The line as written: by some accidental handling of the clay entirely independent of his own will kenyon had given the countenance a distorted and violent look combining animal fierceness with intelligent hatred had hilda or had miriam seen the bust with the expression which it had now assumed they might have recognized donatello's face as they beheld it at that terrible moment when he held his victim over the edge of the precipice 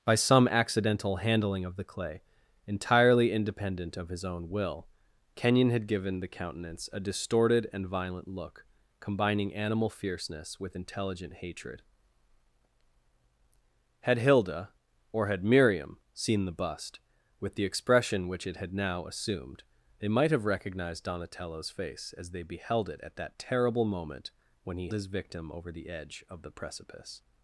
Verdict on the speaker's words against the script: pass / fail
fail